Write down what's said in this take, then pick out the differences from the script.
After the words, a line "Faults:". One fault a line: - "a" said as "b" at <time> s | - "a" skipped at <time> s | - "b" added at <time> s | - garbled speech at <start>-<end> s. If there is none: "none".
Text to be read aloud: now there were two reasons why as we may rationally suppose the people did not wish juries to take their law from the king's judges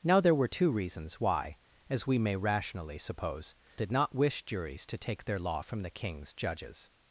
now there were two reasons why as we may rationally suppose did not wish juries to take their law from the king's judges
Faults:
- "the people" skipped at 3.5 s